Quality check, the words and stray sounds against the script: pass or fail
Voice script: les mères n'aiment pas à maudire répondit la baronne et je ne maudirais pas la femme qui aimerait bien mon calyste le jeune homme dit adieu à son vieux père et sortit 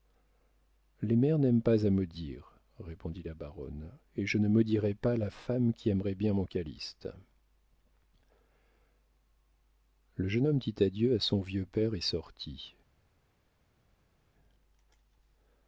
pass